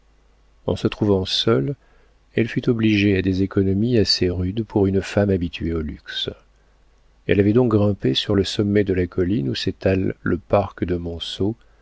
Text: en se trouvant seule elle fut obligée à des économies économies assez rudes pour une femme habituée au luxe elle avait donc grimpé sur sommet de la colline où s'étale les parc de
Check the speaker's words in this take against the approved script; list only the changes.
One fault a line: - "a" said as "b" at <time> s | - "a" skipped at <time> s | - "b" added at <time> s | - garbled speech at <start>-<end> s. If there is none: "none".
- "économies" skipped at 4.0 s
- "le" added at 8.3 s
- "les" said as "le" at 10.2 s